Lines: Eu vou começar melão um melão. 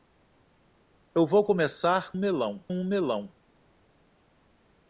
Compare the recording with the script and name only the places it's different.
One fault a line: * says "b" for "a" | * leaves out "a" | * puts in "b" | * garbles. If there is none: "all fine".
all fine